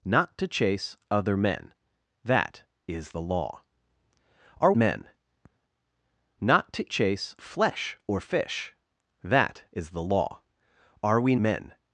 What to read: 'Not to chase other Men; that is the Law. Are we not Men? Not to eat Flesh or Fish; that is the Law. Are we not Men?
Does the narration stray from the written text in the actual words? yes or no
yes